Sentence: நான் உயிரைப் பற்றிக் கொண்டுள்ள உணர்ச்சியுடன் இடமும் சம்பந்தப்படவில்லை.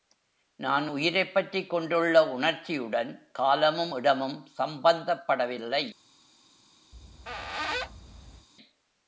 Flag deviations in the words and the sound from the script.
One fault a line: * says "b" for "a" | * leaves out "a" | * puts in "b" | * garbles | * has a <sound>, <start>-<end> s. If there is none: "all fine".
* puts in "காலமும்"
* has a squeak, 6.9-8.5 s